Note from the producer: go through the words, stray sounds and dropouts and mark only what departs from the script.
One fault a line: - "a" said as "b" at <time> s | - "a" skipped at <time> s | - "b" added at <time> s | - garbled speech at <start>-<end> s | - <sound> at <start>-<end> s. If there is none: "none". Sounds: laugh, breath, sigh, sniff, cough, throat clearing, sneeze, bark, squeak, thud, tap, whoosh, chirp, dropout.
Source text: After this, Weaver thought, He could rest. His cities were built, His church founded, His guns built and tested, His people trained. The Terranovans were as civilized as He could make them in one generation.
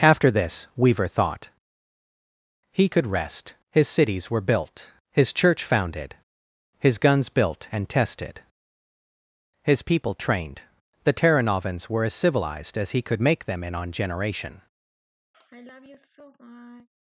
- "one" said as "on" at 13.8 s
- sigh at 15.3-16.9 s